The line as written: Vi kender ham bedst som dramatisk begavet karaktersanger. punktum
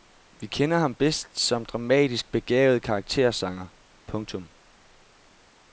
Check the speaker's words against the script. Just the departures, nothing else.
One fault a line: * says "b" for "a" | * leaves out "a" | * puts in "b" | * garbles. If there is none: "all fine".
all fine